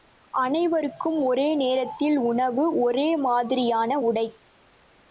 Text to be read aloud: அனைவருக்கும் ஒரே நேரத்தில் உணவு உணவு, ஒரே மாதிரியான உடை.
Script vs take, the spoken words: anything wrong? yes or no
yes